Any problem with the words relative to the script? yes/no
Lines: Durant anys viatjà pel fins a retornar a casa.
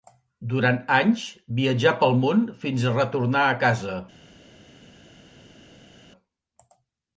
yes